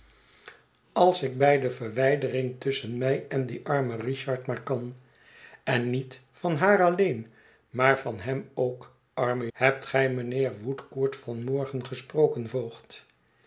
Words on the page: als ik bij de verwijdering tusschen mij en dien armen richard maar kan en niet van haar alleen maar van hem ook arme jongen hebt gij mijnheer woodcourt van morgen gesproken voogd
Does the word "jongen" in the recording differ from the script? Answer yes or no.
yes